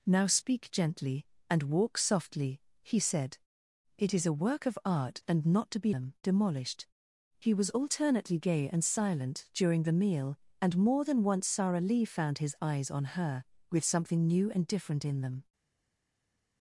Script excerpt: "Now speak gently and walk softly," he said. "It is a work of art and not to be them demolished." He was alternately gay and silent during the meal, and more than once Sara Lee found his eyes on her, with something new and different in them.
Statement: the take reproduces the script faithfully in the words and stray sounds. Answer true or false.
true